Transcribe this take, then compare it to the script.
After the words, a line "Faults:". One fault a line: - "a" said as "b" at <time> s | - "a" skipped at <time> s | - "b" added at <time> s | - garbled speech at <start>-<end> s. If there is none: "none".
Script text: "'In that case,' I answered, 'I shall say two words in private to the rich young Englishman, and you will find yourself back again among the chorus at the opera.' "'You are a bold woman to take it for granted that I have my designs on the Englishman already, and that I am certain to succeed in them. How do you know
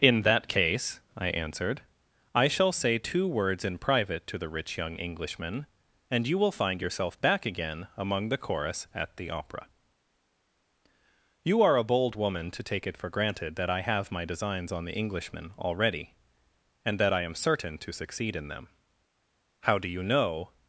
"'In that case,' I answered, 'I shall say two words in private to the rich young Englishman, and you will find yourself back again among the chorus at the opera.' "'You are a bold woman to take it for granted that I have my designs on the Englishman already, and that I am certain to succeed in them. How do you know
Faults:
none